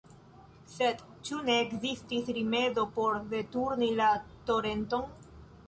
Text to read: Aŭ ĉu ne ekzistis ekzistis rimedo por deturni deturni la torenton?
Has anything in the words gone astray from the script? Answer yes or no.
yes